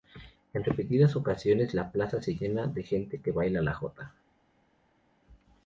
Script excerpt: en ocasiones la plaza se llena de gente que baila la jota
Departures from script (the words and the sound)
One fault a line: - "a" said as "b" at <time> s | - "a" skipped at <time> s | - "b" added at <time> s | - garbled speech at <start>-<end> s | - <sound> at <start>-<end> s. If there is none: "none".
- "repetidas" added at 0.6 s